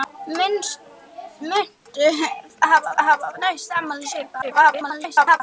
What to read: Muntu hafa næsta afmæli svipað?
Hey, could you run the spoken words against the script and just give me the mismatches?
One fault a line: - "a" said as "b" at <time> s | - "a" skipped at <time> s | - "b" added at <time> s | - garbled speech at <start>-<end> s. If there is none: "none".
- "hafa" added at 3.1 s
- garbled speech at 4.4-5.4 s